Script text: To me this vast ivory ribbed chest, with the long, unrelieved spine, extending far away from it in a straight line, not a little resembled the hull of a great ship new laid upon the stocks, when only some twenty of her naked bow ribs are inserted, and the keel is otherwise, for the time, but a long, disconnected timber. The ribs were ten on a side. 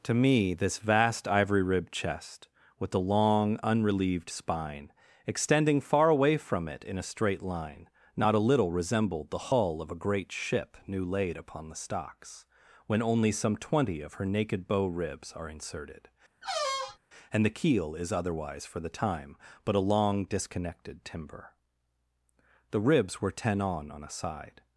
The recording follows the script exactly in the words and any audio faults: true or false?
false